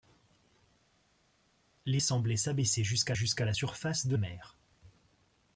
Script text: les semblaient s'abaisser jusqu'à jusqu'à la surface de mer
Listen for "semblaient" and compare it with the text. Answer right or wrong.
right